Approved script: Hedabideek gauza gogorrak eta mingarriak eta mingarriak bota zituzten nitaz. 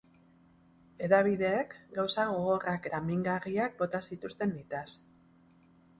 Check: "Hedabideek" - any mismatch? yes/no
no